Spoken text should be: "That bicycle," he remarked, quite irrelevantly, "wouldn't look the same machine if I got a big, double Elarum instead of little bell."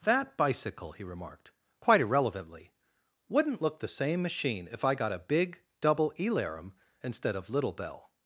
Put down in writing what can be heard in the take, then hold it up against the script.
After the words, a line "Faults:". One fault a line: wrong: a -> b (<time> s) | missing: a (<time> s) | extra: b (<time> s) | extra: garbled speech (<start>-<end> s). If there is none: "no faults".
"That bicycle," he remarked, quite irrelevantly, "wouldn't look the same machine if I got a big, double Elarum instead of little bell."
Faults:
no faults